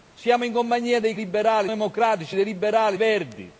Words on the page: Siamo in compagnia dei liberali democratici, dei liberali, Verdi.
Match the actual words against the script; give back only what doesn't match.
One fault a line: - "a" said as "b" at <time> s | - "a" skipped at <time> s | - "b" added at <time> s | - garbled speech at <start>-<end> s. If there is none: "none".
none